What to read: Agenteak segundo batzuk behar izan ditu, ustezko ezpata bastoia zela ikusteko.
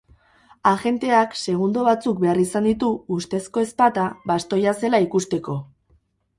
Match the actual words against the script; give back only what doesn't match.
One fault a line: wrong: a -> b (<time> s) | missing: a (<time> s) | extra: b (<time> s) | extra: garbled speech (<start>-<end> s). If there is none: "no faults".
no faults